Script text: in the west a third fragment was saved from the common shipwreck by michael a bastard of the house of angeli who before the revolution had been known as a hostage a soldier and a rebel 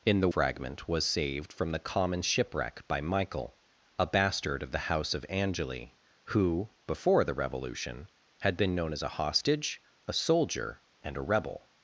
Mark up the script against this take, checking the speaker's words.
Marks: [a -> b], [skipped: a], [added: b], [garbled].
in the [skipped: west a third] fragment was saved from the common shipwreck by michael a bastard of the house of angeli who before the revolution had been known as a hostage a soldier and a rebel